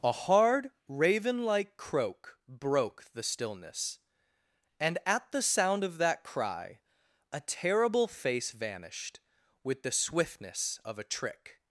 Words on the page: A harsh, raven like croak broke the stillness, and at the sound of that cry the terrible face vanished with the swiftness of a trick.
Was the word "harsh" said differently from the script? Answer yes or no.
yes